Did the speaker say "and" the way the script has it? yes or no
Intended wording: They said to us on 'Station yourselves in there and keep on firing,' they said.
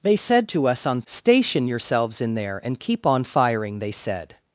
yes